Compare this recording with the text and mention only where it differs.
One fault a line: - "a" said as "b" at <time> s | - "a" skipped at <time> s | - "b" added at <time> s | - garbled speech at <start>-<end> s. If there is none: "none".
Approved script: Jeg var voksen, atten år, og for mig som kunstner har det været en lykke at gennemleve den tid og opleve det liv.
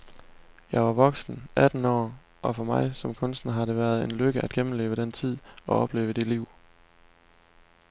none